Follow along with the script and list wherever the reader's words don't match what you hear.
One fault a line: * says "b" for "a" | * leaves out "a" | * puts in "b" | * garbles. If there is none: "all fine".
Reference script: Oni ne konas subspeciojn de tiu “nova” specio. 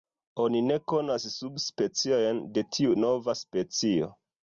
all fine